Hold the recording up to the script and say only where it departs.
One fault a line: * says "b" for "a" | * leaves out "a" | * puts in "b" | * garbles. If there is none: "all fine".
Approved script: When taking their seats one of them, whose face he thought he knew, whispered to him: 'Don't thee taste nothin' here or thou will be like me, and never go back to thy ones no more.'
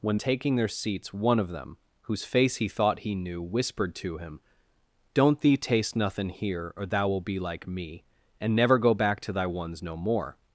all fine